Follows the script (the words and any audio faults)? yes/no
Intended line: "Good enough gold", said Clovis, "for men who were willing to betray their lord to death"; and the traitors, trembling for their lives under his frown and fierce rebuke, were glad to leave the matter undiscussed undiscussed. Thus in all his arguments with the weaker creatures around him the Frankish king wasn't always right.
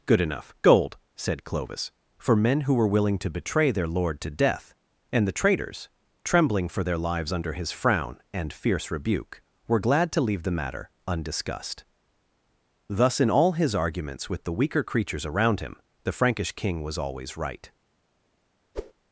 no